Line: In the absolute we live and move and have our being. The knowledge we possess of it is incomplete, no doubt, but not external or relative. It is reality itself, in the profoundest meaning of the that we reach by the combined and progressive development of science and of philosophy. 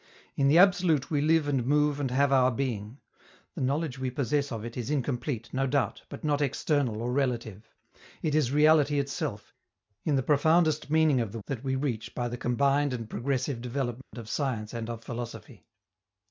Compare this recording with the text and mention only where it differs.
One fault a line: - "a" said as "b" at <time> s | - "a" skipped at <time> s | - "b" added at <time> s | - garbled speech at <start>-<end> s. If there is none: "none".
none